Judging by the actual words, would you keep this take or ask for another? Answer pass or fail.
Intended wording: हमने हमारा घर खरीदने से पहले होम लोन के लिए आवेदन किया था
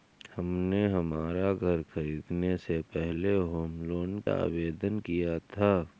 fail